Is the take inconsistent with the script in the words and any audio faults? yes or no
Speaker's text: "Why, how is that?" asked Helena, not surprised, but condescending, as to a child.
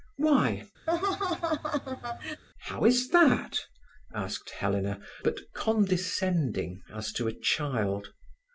yes